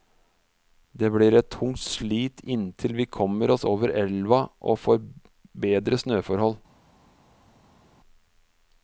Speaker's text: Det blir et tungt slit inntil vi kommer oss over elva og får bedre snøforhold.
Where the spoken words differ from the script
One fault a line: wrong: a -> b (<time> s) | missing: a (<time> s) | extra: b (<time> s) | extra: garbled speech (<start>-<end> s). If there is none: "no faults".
no faults